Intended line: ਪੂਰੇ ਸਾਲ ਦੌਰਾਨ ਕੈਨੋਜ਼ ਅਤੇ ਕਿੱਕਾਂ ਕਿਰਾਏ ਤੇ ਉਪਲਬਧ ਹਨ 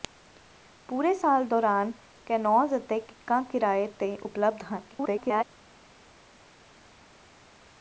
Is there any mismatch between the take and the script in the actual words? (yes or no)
yes